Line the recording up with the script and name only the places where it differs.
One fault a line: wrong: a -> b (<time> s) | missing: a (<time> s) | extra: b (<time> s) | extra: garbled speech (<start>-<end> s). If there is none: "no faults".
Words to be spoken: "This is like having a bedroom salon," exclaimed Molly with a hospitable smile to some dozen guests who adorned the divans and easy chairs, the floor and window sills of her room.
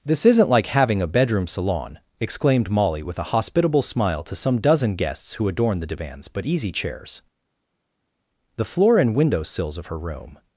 wrong: is -> isn't (0.2 s)
wrong: and -> but (6.3 s)